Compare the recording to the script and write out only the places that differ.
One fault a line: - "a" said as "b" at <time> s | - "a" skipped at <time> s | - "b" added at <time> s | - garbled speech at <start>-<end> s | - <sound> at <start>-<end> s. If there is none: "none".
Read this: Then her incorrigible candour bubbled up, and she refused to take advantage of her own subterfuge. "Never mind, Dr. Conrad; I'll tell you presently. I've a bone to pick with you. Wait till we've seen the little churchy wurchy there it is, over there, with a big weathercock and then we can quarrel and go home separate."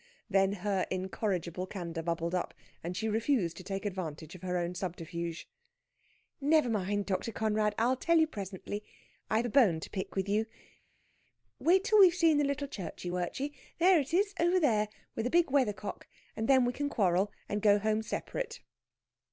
none